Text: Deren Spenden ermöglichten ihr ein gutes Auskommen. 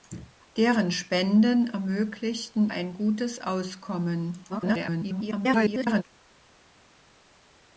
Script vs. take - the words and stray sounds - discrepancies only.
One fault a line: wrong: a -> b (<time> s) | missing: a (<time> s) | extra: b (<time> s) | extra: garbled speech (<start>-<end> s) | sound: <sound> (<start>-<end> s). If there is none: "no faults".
missing: ihr (2.7 s)
extra: garbled speech (4.5-6.0 s)